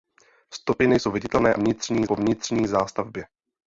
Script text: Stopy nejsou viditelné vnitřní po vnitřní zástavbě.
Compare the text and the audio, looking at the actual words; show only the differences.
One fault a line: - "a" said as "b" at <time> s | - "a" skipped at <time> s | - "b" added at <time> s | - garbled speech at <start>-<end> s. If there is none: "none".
none